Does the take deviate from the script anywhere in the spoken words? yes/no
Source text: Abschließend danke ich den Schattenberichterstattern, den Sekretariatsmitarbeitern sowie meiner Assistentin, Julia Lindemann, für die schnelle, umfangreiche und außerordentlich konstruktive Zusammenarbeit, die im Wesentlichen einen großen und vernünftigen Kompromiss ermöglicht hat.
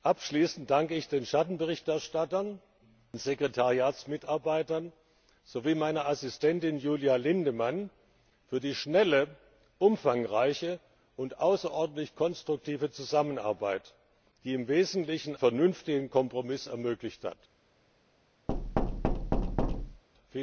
yes